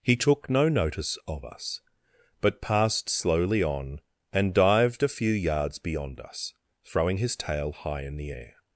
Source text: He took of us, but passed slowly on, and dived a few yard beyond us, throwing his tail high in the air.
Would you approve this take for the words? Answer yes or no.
no